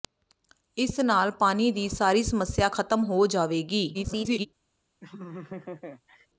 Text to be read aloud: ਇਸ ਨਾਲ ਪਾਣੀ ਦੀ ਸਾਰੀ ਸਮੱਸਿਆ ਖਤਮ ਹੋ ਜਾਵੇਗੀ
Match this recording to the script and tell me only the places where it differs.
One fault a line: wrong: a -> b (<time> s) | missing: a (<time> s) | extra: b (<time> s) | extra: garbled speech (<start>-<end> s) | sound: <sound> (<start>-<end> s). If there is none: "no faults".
extra: garbled speech (3.9-4.5 s)
sound: laugh (5.0-6.3 s)